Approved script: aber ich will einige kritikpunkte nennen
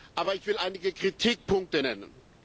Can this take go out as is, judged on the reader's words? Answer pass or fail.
pass